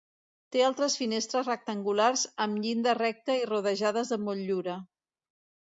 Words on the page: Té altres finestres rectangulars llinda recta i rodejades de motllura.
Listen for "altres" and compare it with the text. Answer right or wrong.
right